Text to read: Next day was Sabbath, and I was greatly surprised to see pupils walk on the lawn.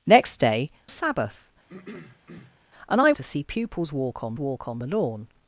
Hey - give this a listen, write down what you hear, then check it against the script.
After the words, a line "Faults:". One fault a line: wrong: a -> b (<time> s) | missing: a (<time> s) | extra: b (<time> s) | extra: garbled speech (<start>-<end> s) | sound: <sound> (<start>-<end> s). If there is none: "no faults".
Next day Sabbath, and I to see pupils walk on walk on the lawn.
Faults:
missing: was (0.7 s)
sound: throat clearing (1.7-2.6 s)
missing: was greatly surprised (3.1 s)
extra: walk on (4.4 s)